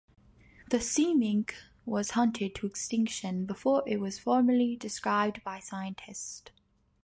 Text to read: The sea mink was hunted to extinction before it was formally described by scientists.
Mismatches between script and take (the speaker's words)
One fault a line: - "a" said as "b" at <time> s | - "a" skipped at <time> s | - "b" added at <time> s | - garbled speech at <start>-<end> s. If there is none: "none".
none